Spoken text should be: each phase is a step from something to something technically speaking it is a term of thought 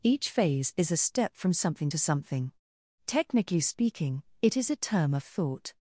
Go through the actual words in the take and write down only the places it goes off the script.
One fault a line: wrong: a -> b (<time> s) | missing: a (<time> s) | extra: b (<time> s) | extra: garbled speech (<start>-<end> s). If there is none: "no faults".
no faults